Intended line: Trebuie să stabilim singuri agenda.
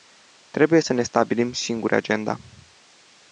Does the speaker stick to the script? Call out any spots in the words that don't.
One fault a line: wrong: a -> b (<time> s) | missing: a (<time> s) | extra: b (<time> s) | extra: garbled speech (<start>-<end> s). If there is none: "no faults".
extra: ne (0.9 s)